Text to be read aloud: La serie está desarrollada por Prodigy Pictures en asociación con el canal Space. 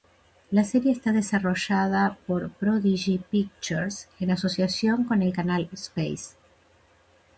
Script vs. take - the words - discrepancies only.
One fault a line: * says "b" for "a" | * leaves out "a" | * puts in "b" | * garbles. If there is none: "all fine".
all fine